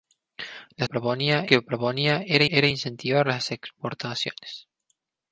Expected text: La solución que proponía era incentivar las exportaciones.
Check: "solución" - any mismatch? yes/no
yes